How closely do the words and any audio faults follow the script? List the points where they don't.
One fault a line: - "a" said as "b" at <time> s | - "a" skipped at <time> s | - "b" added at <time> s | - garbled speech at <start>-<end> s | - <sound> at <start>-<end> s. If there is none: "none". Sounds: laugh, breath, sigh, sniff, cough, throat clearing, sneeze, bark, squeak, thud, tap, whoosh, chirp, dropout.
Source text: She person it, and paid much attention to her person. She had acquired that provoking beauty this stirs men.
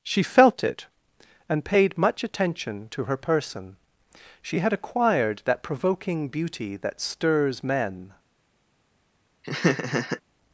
- "person" said as "felt" at 0.2 s
- "this" said as "that" at 6.8 s
- laugh at 9.4-10.2 s